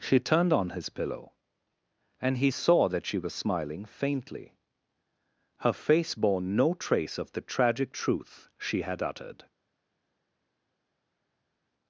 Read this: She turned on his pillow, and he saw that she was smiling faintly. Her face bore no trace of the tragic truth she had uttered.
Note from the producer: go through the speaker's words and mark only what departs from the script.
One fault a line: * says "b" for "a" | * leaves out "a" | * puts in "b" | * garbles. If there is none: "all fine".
all fine